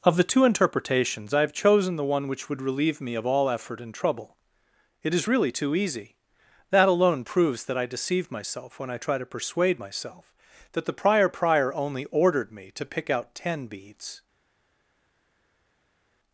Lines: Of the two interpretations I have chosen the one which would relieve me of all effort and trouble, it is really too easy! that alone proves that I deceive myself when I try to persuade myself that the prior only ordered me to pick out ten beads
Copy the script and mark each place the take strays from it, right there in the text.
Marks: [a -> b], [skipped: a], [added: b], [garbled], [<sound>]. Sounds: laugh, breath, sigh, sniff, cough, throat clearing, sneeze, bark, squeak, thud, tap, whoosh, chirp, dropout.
Of the two interpretations I have chosen the one which would relieve me of all effort and trouble, it is really too easy! that alone proves that I deceive myself when I try to persuade myself that the prior [added: prior] only ordered me to pick out ten beads